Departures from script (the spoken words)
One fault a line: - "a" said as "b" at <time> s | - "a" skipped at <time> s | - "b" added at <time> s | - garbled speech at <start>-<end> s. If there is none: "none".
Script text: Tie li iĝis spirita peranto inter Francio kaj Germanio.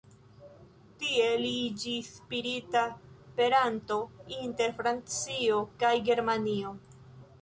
none